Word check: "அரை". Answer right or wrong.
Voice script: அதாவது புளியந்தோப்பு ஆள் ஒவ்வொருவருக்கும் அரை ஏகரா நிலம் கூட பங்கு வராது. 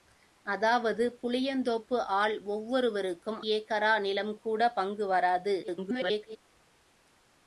wrong